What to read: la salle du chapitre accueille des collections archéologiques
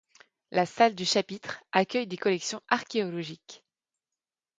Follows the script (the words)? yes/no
yes